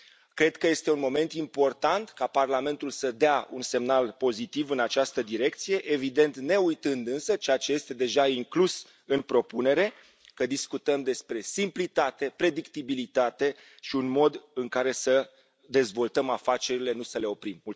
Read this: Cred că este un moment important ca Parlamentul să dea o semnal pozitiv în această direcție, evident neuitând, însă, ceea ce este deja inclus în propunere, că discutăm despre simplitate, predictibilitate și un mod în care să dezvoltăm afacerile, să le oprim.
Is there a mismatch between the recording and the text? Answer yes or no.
yes